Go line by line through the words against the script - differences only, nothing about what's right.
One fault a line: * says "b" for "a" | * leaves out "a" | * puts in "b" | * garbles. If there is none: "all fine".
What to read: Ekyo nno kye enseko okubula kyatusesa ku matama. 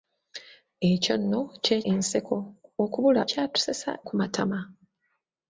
all fine